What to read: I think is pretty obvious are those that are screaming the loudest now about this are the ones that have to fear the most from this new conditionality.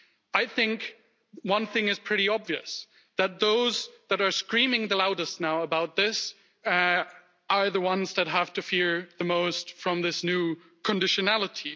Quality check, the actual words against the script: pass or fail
fail